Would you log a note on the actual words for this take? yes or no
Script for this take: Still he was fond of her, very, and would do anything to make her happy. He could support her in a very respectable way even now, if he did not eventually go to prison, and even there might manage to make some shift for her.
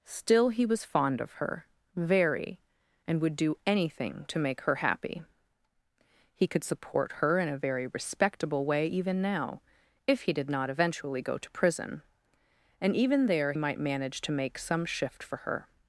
no